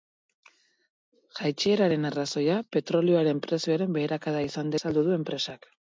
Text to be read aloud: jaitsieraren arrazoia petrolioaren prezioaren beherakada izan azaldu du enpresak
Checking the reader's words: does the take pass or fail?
pass